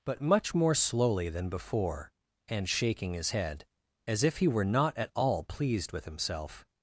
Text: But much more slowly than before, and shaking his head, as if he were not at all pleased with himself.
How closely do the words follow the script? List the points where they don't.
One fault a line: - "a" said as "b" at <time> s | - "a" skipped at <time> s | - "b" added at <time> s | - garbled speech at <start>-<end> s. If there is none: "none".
none